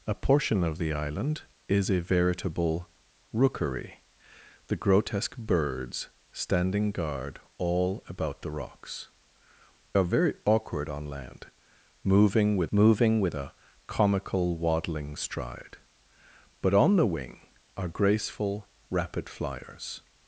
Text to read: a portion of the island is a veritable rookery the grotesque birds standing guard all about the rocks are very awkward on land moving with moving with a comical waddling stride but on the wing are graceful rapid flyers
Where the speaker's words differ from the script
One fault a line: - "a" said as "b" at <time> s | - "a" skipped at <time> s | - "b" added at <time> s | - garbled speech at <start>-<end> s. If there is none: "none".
none